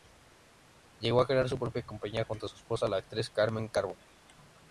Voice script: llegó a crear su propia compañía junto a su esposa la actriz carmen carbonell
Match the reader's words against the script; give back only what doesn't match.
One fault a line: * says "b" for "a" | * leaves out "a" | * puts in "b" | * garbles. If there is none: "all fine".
all fine